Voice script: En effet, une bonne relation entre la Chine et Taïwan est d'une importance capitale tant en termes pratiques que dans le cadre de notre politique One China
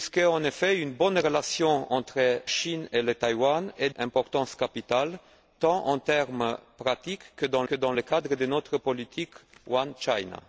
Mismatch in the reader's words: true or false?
true